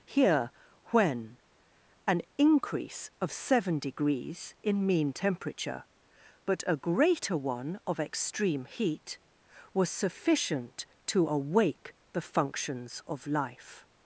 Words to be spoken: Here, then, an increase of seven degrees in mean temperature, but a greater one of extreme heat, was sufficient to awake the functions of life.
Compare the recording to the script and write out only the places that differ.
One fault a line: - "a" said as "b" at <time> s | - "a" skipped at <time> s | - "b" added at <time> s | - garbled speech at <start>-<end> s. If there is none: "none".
- "then" said as "when" at 0.8 s